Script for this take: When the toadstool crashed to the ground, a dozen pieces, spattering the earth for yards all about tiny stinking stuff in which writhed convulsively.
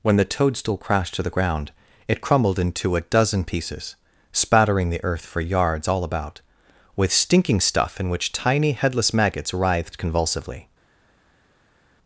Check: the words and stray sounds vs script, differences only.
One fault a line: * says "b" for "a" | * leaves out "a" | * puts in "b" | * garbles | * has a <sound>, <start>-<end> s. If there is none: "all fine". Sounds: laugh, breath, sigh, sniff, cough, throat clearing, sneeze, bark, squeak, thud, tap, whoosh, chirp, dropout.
* puts in "it crumbled into"
* says "with" for "tiny"
* puts in "tiny headless maggots"